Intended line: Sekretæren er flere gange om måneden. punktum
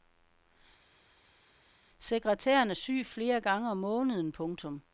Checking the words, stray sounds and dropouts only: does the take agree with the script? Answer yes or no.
no